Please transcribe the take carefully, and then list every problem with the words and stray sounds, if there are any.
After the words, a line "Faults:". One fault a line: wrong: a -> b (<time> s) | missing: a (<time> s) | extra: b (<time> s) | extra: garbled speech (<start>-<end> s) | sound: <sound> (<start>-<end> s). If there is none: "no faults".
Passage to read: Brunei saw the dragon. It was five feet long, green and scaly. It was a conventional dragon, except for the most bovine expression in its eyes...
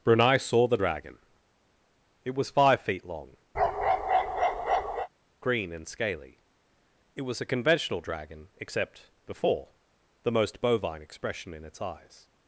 Brunei saw the dragon. It was five feet long, green and scaly. It was a conventional dragon, except before the most bovine expression in its eyes...
Faults:
sound: bark (3.5-5.1 s)
wrong: for -> before (9.3 s)